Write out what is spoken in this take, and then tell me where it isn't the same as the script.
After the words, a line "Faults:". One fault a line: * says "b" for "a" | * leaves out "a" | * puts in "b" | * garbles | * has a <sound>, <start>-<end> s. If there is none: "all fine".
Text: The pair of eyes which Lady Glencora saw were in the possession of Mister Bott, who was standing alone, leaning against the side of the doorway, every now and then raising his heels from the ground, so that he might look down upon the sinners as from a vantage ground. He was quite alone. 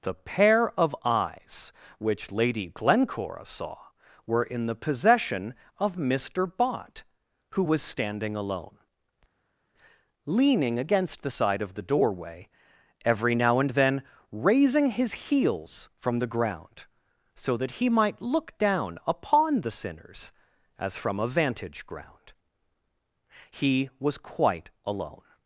The pair of eyes which Lady Glencora saw were in the possession of Mister Bott, who was standing alone, leaning against the side of the doorway, every now and then raising his heels from the ground, so that he might look down upon the sinners as from a vantage ground. He was quite alone.
Faults:
all fine